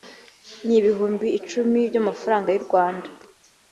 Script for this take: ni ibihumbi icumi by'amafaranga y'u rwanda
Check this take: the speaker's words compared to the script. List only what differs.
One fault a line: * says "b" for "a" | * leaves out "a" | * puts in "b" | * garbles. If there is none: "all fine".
all fine